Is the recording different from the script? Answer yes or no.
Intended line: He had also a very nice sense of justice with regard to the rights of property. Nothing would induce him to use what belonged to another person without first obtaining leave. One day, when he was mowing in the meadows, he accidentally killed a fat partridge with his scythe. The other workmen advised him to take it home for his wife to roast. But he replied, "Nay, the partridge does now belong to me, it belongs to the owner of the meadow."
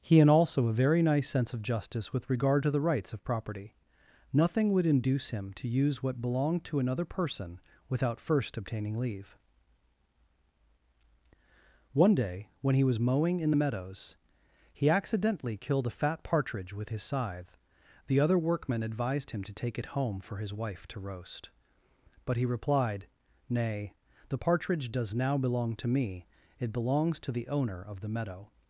no